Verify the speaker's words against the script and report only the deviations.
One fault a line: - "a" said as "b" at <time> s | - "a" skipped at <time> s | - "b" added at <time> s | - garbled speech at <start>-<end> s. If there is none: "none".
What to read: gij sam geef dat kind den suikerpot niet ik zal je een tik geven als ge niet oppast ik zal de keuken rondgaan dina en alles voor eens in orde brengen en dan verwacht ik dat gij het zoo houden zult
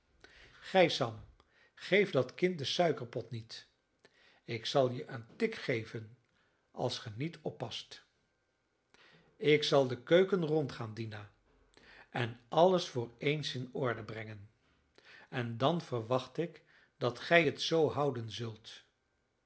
none